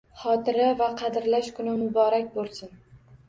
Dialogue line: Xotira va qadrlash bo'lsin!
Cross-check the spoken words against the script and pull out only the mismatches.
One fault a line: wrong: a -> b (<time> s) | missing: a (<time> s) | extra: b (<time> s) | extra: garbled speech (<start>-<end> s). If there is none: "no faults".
extra: kuni muborak (1.6 s)